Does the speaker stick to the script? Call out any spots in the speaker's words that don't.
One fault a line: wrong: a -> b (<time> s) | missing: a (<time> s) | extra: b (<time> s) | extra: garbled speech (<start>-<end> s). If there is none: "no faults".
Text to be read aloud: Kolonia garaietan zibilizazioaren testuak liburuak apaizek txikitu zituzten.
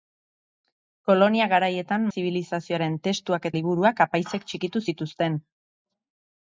no faults